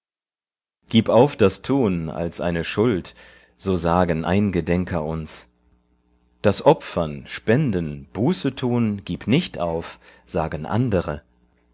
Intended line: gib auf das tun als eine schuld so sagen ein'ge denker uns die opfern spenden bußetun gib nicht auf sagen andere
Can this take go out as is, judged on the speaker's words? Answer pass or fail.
fail